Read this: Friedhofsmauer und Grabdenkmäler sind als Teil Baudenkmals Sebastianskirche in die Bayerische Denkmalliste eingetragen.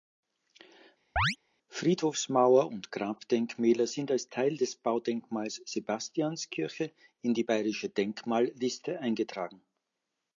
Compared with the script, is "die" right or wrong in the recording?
right